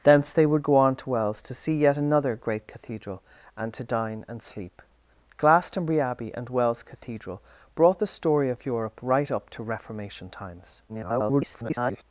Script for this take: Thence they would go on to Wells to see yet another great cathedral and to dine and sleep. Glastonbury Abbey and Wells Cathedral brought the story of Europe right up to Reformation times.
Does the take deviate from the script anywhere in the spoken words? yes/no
yes